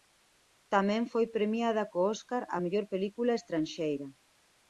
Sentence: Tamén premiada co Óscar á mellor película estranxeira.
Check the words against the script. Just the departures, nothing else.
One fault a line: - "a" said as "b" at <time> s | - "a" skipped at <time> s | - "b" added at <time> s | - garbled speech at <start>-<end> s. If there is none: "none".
- "foi" added at 1.1 s